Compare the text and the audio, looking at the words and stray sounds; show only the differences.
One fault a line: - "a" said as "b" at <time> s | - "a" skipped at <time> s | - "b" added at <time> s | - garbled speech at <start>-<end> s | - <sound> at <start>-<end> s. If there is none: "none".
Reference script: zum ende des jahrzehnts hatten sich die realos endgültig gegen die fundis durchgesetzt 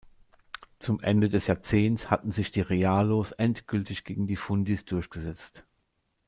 none